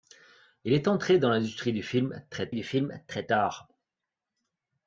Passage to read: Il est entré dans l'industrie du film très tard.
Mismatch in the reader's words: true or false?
true